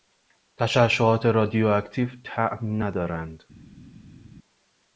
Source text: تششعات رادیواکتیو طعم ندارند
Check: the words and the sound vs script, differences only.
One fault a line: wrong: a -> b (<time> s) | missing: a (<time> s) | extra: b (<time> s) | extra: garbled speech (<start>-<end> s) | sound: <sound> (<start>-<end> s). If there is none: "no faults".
no faults